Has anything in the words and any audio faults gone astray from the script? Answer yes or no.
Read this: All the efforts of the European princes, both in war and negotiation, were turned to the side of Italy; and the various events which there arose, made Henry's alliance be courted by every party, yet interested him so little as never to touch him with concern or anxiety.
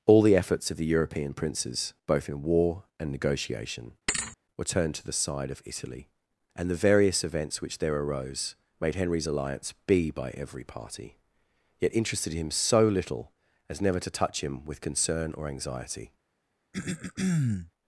yes